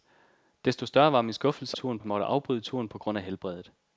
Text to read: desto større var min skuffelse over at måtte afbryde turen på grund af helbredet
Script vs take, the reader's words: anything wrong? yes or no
yes